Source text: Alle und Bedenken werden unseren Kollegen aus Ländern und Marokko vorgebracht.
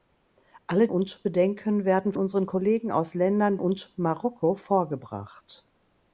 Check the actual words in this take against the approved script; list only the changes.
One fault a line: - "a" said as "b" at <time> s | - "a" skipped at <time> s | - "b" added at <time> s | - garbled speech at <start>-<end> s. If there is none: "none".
none